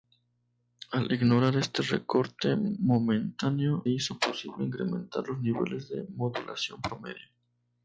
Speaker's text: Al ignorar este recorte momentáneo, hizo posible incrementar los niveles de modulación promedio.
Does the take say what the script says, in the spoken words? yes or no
yes